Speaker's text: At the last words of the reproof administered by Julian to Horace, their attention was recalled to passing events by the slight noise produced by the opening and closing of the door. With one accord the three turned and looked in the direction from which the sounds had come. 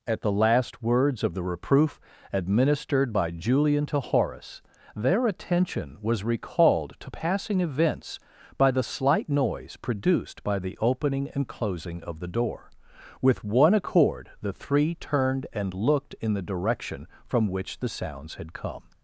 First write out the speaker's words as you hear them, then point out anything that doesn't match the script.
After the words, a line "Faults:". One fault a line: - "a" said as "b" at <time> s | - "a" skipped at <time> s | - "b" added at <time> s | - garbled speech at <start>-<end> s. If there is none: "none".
At the last words of the reproof administered by Julian to Horace, their attention was recalled to passing events by the slight noise produced by the opening and closing of the door. With one accord the three turned and looked in the direction from which the sounds had come.
Faults:
none